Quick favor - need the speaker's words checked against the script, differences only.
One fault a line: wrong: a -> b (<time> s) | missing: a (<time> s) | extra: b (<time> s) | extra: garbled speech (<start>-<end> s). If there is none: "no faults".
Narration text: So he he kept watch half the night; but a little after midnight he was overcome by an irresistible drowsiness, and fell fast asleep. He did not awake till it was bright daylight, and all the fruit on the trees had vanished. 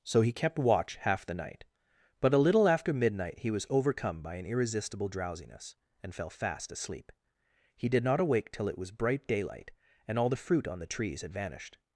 missing: he (0.3 s)